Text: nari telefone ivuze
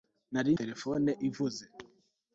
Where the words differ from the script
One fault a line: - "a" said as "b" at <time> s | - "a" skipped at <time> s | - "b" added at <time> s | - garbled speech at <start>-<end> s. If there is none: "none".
none